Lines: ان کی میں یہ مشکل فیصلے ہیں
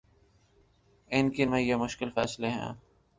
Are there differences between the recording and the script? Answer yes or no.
no